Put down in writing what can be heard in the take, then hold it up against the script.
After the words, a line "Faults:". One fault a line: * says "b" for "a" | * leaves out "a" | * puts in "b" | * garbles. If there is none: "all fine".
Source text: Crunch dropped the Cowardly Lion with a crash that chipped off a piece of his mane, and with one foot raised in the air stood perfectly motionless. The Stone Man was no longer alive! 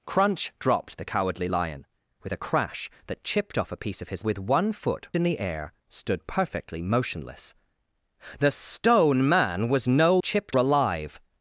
Crunch dropped the Cowardly Lion with a crash that chipped off a piece of his with one foot in the air stood perfectly motionless. The Stone Man was no chipped alive!
Faults:
* leaves out "mane and"
* leaves out "raised"
* says "chipped" for "longer"